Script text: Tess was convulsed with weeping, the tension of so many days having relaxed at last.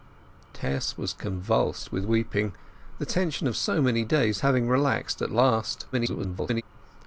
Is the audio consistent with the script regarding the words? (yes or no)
no